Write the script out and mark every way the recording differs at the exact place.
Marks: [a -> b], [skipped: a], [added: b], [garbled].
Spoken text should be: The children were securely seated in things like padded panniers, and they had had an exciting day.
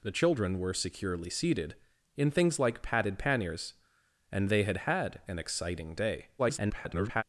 The children were securely seated in things like padded panniers, and they had had an exciting day. [garbled]